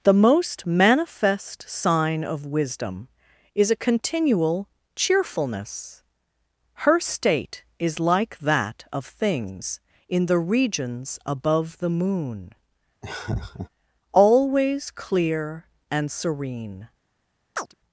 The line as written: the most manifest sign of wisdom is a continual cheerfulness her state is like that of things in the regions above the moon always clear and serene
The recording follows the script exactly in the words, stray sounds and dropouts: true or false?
false